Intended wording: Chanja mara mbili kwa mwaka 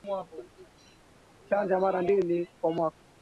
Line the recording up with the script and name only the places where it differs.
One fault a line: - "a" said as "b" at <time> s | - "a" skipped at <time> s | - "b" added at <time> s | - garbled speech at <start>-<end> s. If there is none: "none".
none